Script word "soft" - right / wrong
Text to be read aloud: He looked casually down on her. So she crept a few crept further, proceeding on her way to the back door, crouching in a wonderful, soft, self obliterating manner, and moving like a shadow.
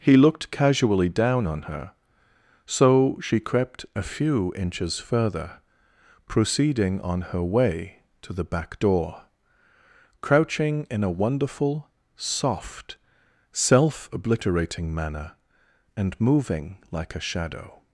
right